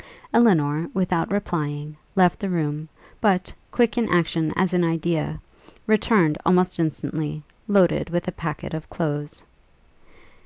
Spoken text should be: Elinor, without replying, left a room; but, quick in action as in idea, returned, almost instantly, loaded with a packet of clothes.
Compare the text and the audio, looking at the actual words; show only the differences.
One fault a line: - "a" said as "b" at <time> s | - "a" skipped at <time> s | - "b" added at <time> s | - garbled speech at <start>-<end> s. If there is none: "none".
- "a" said as "the" at 2.4 s